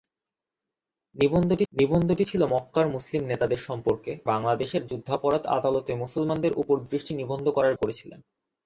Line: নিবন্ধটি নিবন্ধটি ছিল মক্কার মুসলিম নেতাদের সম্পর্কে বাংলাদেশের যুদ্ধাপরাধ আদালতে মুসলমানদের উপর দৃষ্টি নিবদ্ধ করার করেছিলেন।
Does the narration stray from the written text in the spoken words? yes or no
no